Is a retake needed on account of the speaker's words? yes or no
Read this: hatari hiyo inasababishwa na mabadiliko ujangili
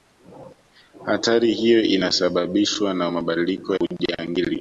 no